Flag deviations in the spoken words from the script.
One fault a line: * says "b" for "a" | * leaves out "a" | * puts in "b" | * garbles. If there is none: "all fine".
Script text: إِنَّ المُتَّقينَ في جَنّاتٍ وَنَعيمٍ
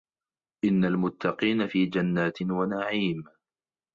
all fine